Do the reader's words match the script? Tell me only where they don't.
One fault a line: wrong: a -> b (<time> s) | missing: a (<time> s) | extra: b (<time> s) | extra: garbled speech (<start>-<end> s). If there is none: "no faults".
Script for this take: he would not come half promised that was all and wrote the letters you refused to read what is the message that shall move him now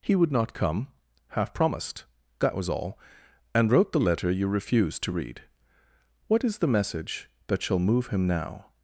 wrong: letters -> letter (4.0 s)